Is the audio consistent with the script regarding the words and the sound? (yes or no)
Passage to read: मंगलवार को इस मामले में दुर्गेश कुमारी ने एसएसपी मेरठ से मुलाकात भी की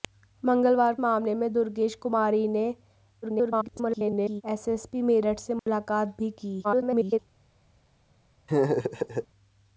no